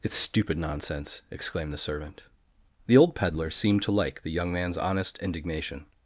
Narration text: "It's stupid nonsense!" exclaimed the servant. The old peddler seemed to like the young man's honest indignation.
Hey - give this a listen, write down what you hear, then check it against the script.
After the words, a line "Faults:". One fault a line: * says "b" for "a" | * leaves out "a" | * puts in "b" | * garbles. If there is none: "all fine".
"It's stupid nonsense!" exclaimed the servant. The old peddler seemed to like the young man's honest indignation.
Faults:
all fine